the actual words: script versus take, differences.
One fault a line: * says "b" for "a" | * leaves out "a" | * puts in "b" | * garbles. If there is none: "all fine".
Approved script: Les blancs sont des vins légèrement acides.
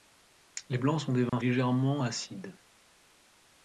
all fine